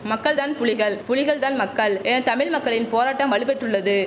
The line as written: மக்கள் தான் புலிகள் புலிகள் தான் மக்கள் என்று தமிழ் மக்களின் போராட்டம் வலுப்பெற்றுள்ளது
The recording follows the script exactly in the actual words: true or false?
false